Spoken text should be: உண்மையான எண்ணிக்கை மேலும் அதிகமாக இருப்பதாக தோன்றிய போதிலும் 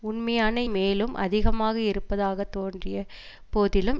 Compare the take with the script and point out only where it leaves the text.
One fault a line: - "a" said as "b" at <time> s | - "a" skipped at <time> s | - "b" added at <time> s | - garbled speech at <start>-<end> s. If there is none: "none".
- "எண்ணிக்கை" skipped at 0.6 s